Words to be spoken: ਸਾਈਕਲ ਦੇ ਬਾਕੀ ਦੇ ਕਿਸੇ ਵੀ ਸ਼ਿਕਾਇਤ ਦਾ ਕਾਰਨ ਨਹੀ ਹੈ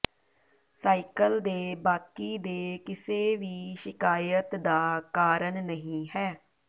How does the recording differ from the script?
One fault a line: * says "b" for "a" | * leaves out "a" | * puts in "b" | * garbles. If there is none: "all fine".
all fine